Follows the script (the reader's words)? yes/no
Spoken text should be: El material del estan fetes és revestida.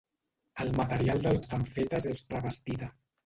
yes